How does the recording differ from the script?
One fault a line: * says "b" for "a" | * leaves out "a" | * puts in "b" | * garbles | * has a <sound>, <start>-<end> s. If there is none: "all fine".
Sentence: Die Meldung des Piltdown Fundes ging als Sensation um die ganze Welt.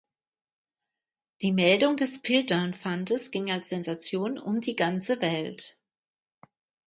all fine